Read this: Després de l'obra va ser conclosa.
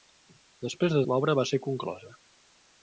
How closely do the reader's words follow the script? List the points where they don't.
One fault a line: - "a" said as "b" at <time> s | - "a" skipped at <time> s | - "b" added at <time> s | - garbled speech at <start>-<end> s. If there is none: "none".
none